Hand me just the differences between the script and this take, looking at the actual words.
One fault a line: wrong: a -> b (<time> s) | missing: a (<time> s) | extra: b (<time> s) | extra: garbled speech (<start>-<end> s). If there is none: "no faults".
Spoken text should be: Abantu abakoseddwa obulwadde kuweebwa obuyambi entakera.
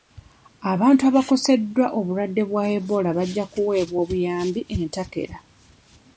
extra: bwa Ebola bajja (2.5 s)